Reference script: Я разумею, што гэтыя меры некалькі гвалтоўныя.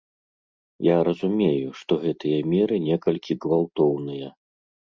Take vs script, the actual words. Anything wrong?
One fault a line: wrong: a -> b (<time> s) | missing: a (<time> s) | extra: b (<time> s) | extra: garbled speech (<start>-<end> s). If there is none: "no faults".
no faults